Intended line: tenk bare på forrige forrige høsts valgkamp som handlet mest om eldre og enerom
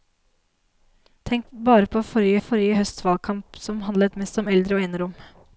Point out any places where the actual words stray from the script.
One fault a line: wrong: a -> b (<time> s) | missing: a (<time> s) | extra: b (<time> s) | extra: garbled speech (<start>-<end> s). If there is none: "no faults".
no faults